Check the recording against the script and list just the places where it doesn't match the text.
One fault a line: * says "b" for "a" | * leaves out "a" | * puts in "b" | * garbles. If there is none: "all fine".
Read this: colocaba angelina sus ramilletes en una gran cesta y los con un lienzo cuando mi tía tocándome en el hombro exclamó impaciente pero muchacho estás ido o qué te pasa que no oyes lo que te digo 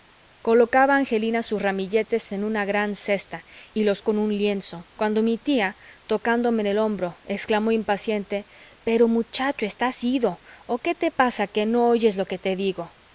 all fine